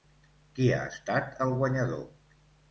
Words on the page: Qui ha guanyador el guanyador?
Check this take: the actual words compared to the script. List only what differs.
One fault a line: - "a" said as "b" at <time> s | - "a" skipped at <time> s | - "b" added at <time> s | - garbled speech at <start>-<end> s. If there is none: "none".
- "guanyador" said as "estat" at 0.9 s